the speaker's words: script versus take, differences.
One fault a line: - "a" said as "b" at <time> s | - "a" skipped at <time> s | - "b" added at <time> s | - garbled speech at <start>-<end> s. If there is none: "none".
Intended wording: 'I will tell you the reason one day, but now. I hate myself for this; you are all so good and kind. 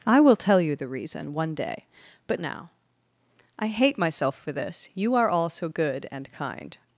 none